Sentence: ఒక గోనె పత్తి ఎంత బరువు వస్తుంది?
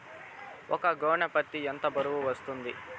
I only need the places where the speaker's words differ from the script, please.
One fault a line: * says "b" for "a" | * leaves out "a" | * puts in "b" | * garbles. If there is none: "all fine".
all fine